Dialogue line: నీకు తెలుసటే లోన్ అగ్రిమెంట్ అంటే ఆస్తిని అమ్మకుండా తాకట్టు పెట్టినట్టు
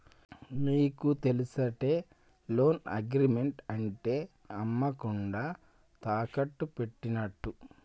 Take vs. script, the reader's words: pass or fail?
fail